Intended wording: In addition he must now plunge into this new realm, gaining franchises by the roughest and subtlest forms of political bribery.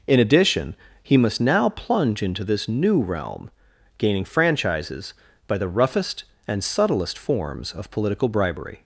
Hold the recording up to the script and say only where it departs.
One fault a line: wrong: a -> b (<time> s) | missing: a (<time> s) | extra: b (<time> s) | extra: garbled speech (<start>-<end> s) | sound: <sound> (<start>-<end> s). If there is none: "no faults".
no faults